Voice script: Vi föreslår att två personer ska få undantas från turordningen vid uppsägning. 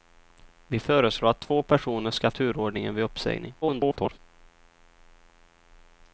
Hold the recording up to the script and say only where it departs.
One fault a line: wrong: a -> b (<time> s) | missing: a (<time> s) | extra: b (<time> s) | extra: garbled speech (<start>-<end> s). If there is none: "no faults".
missing: få undantas från (2.3 s)
extra: garbled speech (3.6-4.2 s)